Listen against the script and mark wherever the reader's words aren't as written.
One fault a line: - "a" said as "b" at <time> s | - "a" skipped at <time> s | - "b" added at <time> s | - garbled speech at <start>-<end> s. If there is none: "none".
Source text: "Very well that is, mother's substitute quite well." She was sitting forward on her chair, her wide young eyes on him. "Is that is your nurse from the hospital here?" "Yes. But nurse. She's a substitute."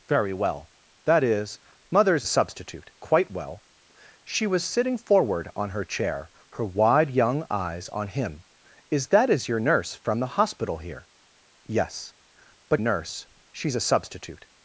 none